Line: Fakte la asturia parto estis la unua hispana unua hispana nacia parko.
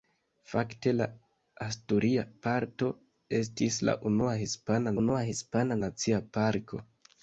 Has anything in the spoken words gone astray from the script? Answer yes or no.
no